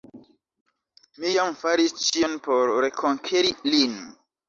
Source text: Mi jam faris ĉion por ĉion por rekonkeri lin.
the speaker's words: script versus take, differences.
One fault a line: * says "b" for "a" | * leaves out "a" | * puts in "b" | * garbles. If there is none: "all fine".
* leaves out "ĉion por"